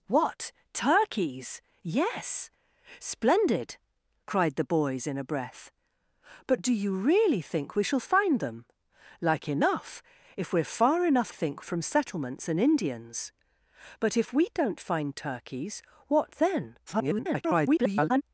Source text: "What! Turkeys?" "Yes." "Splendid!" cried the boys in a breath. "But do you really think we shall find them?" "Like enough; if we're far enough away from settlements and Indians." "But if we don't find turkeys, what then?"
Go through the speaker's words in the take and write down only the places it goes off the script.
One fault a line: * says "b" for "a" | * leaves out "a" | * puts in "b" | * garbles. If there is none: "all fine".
* says "think" for "away"
* garbles